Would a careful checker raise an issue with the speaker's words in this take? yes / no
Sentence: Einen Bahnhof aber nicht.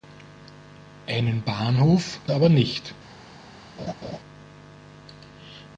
no